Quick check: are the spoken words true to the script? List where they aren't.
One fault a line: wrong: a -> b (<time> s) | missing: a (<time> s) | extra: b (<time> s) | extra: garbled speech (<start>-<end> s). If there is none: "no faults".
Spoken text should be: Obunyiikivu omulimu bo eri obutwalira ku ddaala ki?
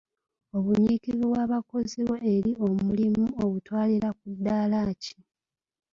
wrong: omulimu -> bw'abakozi (1.3 s)
extra: omulimu (2.7 s)